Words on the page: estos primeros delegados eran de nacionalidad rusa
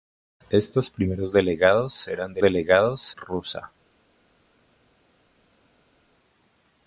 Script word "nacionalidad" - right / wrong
wrong